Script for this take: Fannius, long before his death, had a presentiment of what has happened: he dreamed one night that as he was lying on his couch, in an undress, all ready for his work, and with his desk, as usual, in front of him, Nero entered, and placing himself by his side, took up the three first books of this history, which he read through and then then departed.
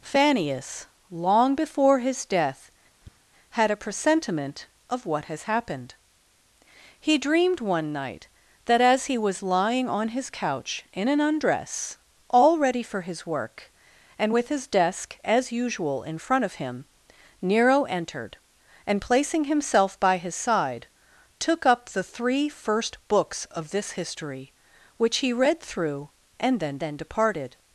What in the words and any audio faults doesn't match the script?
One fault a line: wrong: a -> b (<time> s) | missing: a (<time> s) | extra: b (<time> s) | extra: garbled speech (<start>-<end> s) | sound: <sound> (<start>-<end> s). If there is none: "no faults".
sound: tap (3.0-3.2 s)